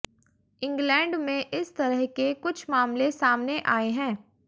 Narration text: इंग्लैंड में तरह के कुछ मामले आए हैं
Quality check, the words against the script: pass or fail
fail